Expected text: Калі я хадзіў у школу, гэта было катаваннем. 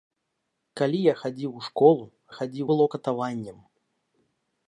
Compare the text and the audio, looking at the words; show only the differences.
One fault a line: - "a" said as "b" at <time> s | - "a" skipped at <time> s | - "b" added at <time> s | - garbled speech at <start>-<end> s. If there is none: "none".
- "гэта" said as "хадзіў" at 2.4 s